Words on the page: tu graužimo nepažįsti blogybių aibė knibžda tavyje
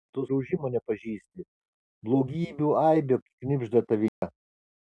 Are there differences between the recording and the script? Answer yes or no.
no